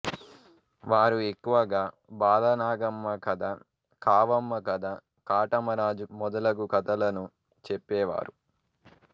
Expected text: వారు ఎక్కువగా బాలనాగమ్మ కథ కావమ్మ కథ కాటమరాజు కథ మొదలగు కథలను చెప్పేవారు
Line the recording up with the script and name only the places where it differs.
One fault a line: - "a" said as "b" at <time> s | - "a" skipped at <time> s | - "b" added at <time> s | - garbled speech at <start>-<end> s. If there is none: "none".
- "కథ" skipped at 6.1 s